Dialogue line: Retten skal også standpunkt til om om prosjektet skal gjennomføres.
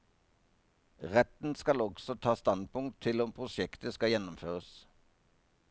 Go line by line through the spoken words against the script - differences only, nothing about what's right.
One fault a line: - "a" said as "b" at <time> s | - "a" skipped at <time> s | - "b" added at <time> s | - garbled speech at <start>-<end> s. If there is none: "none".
- "ta" added at 2.2 s
- "om" skipped at 3.3 s